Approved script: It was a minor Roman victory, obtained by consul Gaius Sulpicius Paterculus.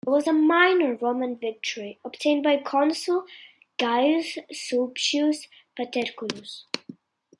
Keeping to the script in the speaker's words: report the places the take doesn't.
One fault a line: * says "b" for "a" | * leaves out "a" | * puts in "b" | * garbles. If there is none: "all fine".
all fine